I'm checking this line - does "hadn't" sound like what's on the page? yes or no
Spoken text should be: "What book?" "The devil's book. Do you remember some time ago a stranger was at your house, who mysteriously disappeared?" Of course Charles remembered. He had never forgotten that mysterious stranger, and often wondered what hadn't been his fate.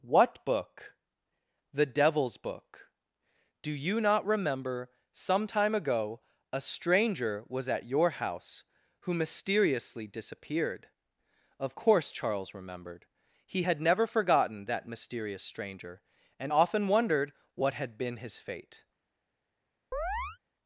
no